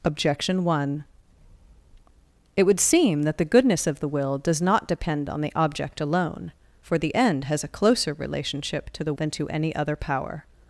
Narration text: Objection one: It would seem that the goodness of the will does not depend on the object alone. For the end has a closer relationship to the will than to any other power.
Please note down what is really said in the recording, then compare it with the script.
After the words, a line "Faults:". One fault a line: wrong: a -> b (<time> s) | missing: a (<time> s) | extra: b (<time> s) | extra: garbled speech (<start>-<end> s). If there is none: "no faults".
Objection one: It would seem that the goodness of the will does not depend on the object alone. For the end has a closer relationship to the than to any other power.
Faults:
missing: will (9.1 s)